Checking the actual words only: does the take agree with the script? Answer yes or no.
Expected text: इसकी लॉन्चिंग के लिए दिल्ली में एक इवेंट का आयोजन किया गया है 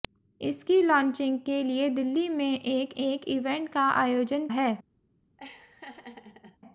no